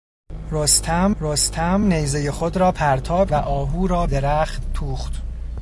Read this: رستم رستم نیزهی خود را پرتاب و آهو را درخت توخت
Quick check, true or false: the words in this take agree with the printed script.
true